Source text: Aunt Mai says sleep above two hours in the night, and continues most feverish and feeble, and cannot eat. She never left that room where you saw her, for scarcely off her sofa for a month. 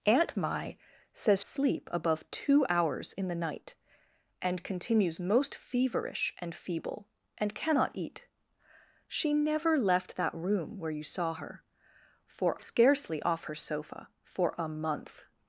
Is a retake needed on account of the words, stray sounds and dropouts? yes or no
no